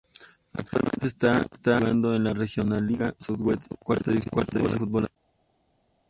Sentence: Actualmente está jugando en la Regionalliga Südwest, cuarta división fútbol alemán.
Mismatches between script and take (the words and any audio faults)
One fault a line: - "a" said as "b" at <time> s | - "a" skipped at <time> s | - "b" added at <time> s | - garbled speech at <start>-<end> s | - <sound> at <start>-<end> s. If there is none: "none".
none